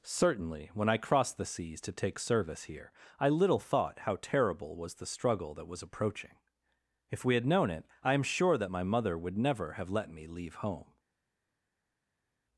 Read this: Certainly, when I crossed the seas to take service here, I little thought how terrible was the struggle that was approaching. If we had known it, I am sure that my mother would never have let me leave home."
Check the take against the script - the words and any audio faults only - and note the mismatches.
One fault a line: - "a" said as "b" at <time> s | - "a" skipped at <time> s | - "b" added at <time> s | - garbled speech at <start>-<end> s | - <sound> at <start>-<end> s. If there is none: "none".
none